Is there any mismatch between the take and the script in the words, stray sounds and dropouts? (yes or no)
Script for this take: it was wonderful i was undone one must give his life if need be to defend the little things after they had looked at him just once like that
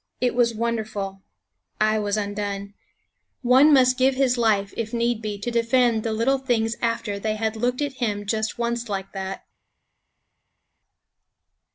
no